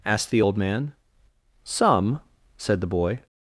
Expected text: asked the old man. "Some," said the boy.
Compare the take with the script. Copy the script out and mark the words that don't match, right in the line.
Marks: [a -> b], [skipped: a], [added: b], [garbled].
asked the old man. "Some," said the boy.